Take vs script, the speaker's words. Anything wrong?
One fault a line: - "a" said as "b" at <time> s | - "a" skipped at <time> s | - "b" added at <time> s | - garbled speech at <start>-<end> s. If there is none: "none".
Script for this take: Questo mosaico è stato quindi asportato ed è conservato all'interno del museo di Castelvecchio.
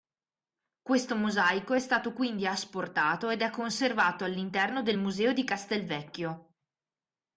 none